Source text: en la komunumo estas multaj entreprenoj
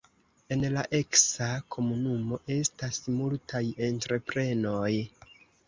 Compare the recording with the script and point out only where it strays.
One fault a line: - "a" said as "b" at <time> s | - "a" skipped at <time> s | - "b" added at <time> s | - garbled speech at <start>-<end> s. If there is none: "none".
- "eksa" added at 1.0 s